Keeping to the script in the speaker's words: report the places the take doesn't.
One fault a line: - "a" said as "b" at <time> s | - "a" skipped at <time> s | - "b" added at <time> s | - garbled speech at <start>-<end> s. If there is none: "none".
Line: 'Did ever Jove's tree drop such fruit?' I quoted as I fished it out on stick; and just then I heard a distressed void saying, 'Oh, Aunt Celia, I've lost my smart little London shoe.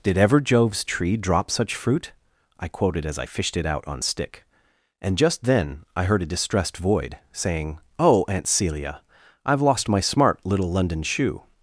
none